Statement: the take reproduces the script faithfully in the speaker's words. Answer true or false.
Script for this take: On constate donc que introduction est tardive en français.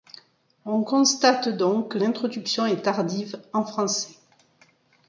true